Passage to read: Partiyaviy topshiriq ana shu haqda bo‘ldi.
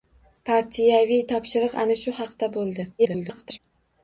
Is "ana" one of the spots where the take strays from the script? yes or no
no